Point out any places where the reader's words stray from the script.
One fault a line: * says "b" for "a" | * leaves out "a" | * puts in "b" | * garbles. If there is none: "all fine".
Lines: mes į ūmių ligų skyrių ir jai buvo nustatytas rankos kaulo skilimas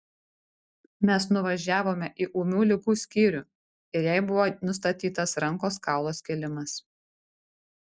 * puts in "nuvažiavome"